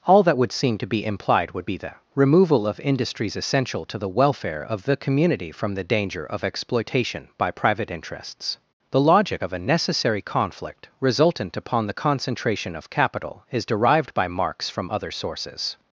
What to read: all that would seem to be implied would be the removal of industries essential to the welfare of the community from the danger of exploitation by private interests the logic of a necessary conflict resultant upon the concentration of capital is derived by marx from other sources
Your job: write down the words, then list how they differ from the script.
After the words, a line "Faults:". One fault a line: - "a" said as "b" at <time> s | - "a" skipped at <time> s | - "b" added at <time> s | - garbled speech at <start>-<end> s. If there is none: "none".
all that would seem to be implied would be the removal of industries essential to the welfare of the community from the danger of exploitation by private interests the logic of a necessary conflict resultant upon the concentration of capital is derived by marx from other sources
Faults:
none